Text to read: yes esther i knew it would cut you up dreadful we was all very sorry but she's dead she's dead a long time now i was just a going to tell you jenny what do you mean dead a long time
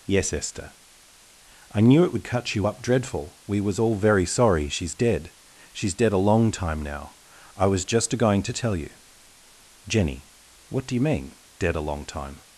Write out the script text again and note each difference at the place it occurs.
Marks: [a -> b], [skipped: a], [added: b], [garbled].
yes esther i knew it would cut you up dreadful we was all very sorry [skipped: but] she's dead she's dead a long time now i was just a going to tell you jenny what do you mean dead a long time